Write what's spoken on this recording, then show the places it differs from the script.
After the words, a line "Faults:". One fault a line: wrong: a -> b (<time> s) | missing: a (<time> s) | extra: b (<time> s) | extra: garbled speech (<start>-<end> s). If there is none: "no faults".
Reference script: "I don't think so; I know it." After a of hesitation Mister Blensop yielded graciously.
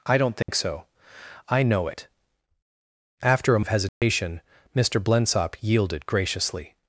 "I don't think so; I know it." After a of hesitation Mister Blensop yielded graciously.
Faults:
no faults